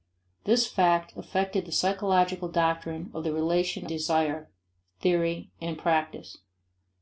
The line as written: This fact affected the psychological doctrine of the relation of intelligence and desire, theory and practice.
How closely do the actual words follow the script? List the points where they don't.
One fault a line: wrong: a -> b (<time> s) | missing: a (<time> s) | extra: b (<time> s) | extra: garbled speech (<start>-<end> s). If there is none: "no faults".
missing: of intelligence and (3.9 s)